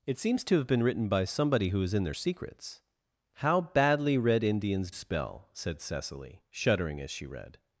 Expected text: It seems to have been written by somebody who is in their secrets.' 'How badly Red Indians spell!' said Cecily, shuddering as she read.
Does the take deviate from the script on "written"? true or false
false